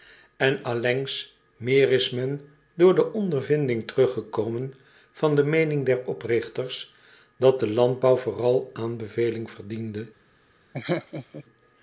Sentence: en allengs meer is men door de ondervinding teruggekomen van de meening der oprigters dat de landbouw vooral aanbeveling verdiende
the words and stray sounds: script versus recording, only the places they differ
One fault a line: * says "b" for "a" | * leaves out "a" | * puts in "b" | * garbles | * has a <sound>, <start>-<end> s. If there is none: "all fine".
* has a laugh, 10.7-11.4 s